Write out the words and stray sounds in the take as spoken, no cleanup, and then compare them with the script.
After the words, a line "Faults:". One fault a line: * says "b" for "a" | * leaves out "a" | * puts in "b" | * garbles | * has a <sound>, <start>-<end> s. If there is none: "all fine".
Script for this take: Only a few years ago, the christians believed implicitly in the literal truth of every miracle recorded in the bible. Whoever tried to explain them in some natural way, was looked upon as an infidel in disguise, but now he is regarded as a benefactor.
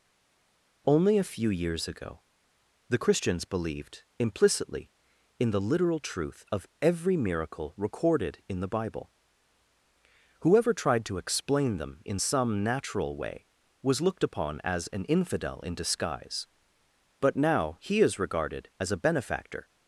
Only a few years ago, the christians believed implicitly in the literal truth of every miracle recorded in the bible. Whoever tried to explain them in some natural way, was looked upon as an infidel in disguise, but now he is regarded as a benefactor.
Faults:
all fine